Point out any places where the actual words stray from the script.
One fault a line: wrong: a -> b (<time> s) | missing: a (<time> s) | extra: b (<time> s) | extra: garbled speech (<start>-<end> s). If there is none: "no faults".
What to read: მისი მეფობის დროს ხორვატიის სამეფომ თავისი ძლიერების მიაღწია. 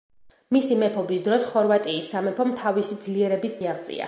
no faults